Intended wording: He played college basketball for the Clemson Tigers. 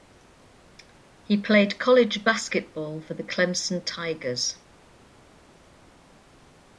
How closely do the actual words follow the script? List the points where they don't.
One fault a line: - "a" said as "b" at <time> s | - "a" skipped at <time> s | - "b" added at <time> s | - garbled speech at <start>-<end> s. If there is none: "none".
none